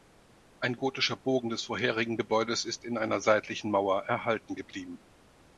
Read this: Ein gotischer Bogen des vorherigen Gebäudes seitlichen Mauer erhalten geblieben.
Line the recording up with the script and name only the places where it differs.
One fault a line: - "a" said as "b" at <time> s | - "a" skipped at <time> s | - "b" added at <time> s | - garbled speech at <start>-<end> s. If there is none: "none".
- "ist in einer" added at 2.6 s